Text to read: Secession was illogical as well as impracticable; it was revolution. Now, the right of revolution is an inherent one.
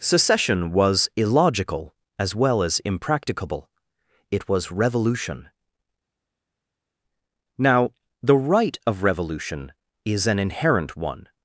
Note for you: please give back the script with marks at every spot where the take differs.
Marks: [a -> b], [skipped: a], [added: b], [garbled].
Secession was illogical as well as impracticable; it was revolution. Now, the right of revolution is an inherent one.